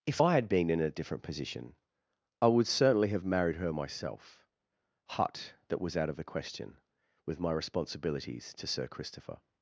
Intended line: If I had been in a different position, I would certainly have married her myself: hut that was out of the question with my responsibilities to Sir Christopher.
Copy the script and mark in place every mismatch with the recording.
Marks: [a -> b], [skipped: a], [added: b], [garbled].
If I had been in a different position, I would certainly have married her myself: hut that was out of the question with my responsibilities to Sir Christopher.